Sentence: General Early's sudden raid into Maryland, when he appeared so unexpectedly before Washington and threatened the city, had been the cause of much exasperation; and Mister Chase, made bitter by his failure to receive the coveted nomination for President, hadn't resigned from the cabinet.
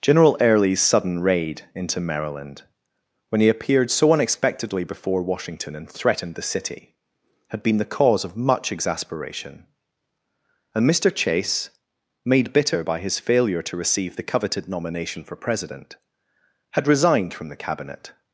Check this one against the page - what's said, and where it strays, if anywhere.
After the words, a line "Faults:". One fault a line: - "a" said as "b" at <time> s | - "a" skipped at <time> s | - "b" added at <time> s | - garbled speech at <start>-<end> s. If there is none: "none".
General Early's sudden raid into Maryland, when he appeared so unexpectedly before Washington and threatened the city, had been the cause of much exasperation; and Mister Chase, made bitter by his failure to receive the coveted nomination for President, had resigned from the cabinet.
Faults:
- "hadn't" said as "had" at 16.7 s